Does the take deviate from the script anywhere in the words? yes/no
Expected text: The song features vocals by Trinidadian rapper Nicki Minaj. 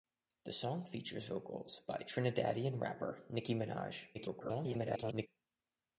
yes